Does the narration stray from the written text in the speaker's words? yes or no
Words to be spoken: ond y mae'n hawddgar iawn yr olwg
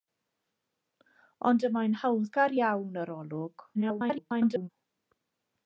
yes